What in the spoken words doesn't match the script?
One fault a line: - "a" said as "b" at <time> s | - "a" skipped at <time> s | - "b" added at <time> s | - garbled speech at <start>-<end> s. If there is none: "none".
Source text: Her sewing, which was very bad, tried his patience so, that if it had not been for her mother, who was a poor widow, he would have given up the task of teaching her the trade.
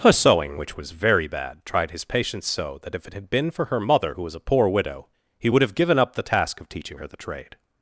- "not" skipped at 3.3 s